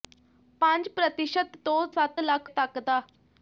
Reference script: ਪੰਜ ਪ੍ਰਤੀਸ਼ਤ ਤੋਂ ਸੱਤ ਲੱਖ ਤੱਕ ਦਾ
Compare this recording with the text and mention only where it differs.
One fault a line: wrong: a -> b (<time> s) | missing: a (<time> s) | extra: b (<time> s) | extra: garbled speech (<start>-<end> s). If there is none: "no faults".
no faults